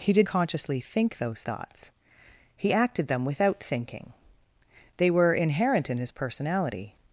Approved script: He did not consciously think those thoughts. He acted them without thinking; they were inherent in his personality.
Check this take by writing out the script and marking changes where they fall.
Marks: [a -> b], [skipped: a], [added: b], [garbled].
He did [skipped: not] consciously think those thoughts. He acted them without thinking; they were inherent in his personality.